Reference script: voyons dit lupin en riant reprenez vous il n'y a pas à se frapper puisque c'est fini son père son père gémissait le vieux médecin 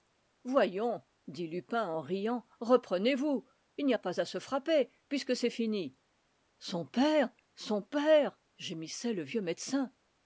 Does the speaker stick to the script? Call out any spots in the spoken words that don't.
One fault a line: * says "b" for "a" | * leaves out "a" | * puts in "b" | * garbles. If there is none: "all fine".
all fine